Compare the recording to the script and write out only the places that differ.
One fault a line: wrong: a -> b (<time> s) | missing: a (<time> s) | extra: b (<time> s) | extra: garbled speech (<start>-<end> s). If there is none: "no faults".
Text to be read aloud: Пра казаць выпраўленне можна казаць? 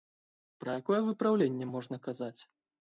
wrong: казаць -> якое (0.8 s)